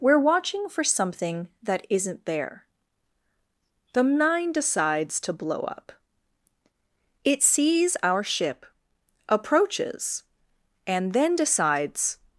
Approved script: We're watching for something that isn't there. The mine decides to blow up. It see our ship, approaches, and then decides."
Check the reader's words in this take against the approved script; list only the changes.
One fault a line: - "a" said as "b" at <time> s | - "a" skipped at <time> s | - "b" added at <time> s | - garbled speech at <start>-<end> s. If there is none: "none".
- "see" said as "sees" at 7.4 s